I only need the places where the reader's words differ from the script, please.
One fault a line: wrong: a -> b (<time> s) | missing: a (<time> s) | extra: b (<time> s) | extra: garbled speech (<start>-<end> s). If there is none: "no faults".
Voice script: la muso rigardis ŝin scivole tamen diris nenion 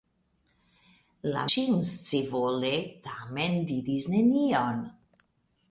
missing: muso rigardis (1.4 s)